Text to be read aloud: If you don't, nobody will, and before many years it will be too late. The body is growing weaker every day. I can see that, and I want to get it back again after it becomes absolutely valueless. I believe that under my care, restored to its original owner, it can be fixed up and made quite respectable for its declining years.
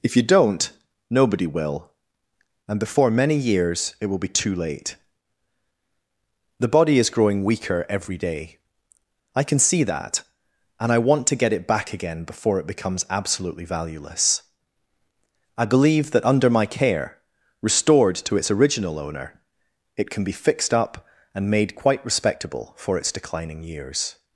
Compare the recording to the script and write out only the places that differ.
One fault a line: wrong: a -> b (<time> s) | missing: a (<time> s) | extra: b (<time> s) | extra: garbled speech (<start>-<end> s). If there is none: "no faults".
wrong: after -> before (12.2 s)